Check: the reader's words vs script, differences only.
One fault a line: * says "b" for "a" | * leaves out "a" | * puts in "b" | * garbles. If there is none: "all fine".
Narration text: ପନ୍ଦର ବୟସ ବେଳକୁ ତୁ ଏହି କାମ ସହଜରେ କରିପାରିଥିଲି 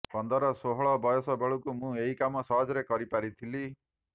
* puts in "ଷୋହଳ"
* says "ମୁଁ" for "ତୁ"